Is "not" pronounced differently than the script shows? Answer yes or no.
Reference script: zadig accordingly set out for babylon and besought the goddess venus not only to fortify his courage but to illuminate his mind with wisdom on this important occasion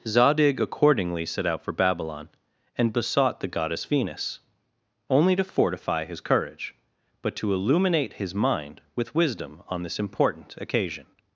yes